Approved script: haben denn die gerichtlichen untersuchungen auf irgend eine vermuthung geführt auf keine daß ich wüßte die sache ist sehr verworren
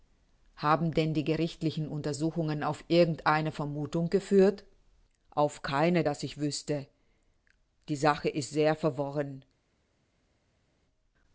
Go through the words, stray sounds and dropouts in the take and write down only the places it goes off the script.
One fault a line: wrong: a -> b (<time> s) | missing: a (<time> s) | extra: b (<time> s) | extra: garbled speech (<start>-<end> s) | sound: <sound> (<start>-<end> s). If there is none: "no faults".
no faults